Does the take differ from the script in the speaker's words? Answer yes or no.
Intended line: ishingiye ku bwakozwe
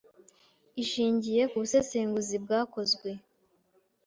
yes